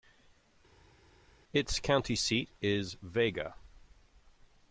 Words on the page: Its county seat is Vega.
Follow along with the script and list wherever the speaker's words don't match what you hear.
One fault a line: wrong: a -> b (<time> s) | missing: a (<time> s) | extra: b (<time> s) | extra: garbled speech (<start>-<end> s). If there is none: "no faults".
no faults